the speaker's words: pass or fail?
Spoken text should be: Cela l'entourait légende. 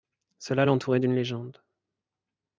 fail